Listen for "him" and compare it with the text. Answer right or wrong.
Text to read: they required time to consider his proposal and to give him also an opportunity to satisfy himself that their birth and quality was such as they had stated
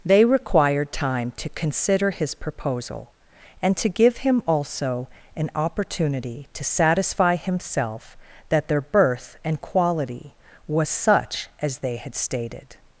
right